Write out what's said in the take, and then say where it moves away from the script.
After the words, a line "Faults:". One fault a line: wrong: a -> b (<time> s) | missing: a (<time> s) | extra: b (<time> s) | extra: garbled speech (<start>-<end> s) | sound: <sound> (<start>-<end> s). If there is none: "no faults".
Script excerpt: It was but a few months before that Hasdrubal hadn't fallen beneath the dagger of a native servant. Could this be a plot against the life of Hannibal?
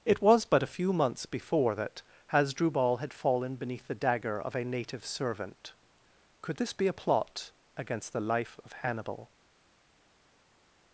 It was but a few months before that Hasdrubal had fallen beneath the dagger of a native servant. Could this be a plot against the life of Hannibal?
Faults:
wrong: hadn't -> had (3.0 s)